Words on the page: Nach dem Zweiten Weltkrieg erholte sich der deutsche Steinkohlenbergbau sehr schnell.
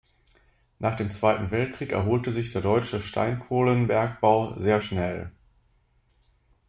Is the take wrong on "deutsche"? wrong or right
right